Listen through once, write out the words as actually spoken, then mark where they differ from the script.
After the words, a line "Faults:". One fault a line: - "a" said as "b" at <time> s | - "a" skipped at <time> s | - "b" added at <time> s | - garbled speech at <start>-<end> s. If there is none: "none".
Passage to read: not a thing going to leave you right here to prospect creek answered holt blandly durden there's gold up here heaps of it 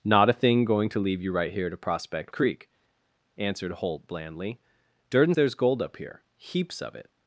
not a thing going to leave you right here to prospect creek answered holt blandly durden there's gold up here heaps of it
Faults:
none